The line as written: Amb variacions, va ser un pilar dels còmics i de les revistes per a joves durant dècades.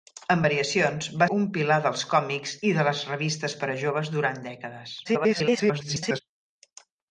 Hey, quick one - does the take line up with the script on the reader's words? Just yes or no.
no